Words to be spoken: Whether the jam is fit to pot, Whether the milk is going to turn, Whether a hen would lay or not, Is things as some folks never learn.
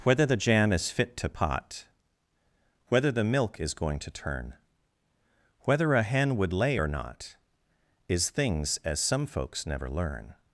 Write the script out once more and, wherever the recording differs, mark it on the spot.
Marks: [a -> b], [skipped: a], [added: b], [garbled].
Whether the jam is fit to pot, Whether the milk is going to turn, Whether a hen would lay or not, Is things as some folks never learn.